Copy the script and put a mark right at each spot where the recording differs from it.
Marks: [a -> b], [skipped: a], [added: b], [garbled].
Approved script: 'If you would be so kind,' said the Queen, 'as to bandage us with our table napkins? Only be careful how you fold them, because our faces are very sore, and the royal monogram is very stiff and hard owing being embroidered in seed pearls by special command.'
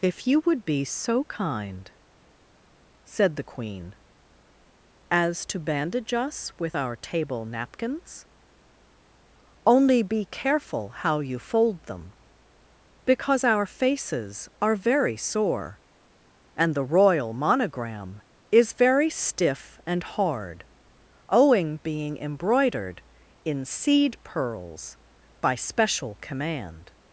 'If you would be so kind,' said the Queen, 'as to bandage us with our table napkins? Only be careful how you fold them, because our faces are very sore, and the royal monogram is very stiff and hard owing being embroidered in seed pearls by special command.'